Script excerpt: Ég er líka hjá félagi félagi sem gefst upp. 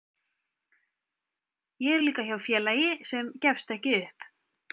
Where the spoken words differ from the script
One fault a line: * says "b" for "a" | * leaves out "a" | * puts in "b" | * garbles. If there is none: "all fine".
* leaves out "félagi"
* puts in "ekki"